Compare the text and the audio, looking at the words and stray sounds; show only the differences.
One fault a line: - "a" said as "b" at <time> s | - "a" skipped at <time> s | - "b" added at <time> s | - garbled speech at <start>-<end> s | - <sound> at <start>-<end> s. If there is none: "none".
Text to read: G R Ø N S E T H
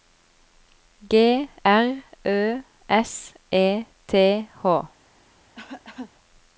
- "N" skipped at 2.6 s
- cough at 5.5-6.1 s